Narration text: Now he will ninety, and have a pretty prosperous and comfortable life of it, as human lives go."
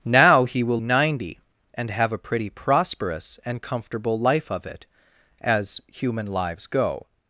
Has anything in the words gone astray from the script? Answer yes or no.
no